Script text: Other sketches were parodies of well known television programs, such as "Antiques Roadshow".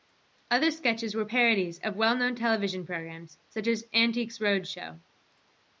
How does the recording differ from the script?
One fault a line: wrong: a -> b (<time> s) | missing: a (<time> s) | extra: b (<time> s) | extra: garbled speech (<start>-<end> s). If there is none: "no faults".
no faults